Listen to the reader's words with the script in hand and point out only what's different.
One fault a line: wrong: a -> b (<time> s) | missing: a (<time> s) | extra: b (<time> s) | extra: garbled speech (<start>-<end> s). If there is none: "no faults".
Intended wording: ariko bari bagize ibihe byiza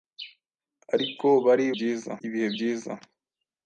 wrong: bagize -> byiza (1.7 s)